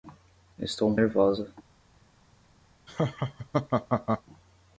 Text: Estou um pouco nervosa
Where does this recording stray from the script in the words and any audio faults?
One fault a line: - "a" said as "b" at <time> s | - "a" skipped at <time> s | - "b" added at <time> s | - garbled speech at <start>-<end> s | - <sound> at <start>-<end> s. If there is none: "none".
- "pouco" skipped at 1.0 s
- laugh at 2.9-4.2 s